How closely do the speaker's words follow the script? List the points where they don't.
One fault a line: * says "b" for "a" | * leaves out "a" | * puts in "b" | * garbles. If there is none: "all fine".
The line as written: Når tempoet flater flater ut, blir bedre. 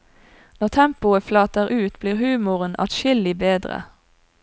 * leaves out "flater"
* puts in "humoren adskillig"